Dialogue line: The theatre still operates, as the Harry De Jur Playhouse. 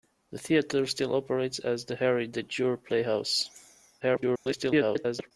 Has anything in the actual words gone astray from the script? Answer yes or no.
yes